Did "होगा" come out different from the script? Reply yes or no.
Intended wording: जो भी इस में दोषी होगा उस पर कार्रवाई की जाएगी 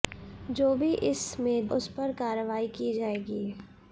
yes